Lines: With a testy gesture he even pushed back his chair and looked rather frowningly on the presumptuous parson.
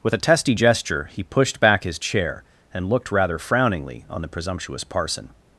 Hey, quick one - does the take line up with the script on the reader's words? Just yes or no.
no